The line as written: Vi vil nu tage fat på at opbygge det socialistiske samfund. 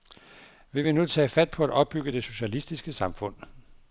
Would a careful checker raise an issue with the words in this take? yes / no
no